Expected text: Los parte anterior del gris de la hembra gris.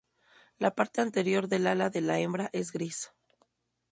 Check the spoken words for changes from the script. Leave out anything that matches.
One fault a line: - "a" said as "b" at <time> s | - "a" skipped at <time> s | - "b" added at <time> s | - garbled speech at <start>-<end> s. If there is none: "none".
- "Los" said as "La" at 0.6 s
- "gris" said as "ala" at 1.7 s
- "es" added at 2.5 s